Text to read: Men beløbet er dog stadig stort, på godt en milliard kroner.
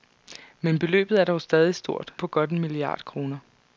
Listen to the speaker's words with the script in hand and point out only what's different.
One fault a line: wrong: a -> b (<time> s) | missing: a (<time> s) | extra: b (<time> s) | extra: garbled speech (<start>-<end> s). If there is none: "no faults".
no faults